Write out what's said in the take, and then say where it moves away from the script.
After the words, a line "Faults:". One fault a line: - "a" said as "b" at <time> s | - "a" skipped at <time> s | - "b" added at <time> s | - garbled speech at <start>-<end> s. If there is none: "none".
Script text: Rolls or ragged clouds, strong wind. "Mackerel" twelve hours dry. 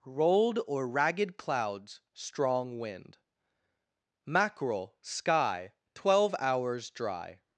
Rolled or ragged clouds, strong wind. "Mackerel" sky, twelve hours dry.
Faults:
- "Rolls" said as "Rolled" at 0.0 s
- "sky" added at 5.0 s